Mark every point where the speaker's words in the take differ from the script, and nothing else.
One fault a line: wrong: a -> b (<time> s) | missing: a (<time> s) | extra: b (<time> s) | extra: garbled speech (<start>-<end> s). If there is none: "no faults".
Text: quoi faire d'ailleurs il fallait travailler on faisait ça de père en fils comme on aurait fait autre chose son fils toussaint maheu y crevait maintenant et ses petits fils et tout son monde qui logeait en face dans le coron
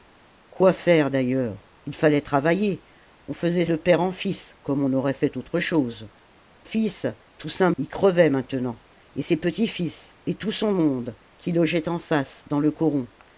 missing: ça (3.6 s)
missing: son (6.1 s)
missing: maheu (7.7 s)